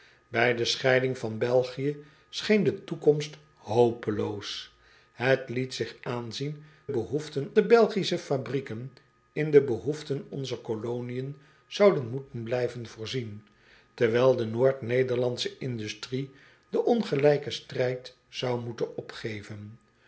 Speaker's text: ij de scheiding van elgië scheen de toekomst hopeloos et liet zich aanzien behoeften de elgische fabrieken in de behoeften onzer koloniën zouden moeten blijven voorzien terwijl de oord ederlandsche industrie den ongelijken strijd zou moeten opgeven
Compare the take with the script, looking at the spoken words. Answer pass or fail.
pass